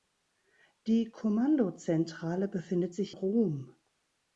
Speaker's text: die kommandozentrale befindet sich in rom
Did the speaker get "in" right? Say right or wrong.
wrong